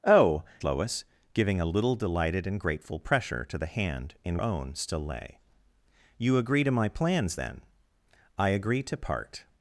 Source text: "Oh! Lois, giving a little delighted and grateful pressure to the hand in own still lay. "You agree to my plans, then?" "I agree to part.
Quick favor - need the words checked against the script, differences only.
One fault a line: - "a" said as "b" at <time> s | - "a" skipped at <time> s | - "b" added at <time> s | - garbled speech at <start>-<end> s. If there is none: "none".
none